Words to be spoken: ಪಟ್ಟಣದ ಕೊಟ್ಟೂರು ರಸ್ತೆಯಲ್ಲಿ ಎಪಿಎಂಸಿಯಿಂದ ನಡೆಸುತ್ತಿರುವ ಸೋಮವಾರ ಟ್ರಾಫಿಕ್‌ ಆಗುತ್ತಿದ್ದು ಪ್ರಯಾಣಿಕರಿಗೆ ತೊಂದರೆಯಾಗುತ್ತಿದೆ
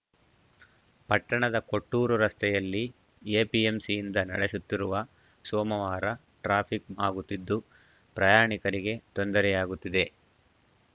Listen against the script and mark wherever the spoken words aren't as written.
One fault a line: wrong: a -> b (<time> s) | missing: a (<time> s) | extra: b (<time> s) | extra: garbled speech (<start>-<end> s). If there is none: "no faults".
no faults